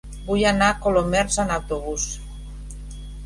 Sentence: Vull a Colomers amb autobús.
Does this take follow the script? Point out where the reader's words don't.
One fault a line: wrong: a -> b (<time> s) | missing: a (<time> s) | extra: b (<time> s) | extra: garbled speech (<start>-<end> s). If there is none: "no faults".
extra: anar (0.5 s)